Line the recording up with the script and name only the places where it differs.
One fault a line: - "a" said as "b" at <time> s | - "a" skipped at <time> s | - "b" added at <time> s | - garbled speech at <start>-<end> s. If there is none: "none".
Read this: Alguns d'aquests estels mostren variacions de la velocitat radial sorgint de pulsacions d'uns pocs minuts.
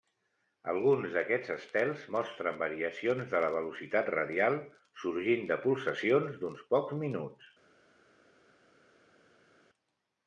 none